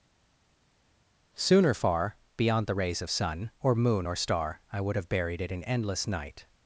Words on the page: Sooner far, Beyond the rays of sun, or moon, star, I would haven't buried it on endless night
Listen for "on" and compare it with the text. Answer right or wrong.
wrong